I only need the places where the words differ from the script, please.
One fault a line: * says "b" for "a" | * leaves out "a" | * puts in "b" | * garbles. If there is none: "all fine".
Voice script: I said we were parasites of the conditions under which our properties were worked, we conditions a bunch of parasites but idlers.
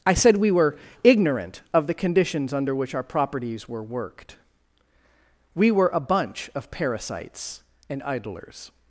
* says "ignorant" for "parasites"
* says "were" for "conditions"
* says "and" for "but"